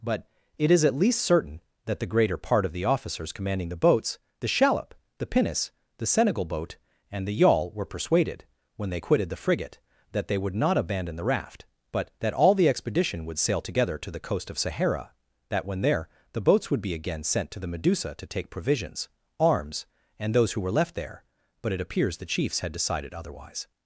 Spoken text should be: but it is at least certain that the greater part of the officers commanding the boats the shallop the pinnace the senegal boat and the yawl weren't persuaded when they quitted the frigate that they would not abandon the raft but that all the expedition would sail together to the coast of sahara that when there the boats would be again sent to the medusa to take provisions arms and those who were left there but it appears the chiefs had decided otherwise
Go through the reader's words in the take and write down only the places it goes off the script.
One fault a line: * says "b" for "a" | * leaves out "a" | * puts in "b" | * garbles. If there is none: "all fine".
* says "were" for "weren't"